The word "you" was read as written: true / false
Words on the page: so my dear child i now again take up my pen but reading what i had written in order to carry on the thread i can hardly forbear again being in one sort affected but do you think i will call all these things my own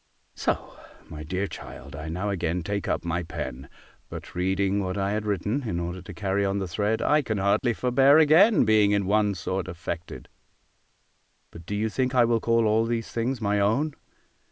true